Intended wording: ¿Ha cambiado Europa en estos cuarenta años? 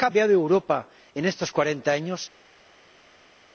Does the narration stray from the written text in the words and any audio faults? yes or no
no